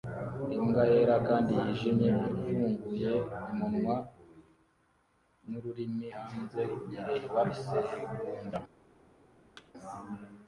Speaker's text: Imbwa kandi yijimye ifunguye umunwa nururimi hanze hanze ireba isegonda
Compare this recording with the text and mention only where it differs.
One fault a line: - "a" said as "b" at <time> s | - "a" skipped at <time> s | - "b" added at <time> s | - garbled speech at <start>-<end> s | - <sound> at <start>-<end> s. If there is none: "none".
- "yera" added at 0.9 s
- "hanze" skipped at 6.6 s
- thud at 9.6-9.7 s